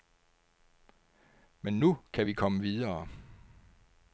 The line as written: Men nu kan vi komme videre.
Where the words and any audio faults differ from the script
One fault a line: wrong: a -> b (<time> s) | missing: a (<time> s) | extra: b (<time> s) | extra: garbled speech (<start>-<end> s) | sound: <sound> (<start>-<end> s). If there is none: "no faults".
no faults